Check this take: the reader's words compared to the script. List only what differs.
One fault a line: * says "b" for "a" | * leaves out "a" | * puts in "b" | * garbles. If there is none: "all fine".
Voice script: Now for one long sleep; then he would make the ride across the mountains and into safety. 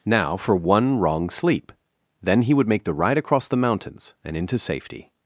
* says "wrong" for "long"